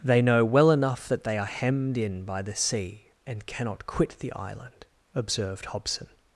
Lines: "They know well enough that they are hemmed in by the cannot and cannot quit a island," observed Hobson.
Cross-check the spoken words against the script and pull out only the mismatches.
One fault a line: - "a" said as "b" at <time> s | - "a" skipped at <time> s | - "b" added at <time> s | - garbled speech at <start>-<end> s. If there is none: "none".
- "cannot" said as "sea" at 2.5 s
- "a" said as "the" at 4.2 s